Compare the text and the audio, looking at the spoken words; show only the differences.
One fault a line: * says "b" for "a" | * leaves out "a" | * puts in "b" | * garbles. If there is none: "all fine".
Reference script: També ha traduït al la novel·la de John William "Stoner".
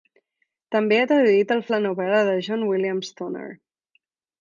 all fine